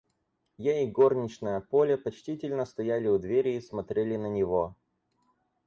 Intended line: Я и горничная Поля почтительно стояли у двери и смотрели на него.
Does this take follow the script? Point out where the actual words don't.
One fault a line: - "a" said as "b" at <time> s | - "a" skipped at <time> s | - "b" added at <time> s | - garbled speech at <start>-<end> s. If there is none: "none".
none